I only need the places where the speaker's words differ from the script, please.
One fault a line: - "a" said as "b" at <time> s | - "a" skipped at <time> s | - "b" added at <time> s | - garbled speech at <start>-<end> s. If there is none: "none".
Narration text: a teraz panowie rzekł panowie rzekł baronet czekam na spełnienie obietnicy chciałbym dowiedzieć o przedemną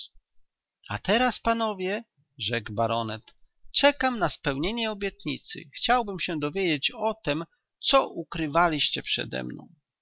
- "panowie rzekł" skipped at 2.7 s
- "się" added at 6.2 s
- "tem co ukrywaliście" added at 7.1 s